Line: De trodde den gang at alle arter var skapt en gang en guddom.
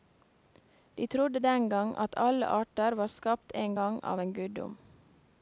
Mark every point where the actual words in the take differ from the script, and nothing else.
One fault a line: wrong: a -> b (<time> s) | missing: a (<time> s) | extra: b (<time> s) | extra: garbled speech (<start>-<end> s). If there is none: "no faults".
extra: av (4.0 s)